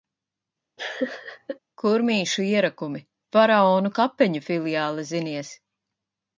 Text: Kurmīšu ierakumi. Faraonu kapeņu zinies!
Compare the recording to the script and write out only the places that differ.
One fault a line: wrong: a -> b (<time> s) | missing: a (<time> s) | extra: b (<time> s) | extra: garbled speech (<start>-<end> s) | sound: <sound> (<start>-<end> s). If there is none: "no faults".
sound: laugh (0.8-1.6 s)
extra: filiāle (4.5 s)